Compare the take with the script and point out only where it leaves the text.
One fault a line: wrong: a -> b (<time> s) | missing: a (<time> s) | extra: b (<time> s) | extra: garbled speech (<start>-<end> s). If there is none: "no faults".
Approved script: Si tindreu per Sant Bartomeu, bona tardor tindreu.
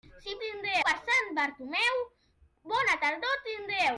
no faults